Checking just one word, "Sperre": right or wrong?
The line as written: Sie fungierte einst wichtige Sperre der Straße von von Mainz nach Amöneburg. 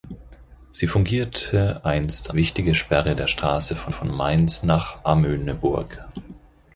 right